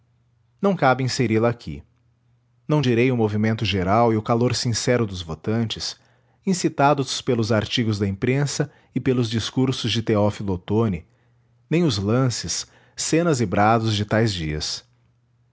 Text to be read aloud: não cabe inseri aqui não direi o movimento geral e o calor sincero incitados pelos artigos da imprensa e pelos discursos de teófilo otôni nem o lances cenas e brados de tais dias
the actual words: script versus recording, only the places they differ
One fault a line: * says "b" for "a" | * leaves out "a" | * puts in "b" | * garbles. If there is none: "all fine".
* puts in "la"
* puts in "dos votantes"
* says "os" for "o"